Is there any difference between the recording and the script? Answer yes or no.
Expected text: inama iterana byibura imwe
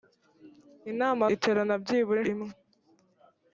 no